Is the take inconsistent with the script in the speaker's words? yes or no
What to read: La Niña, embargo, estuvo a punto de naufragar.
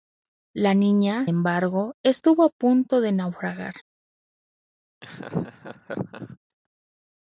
no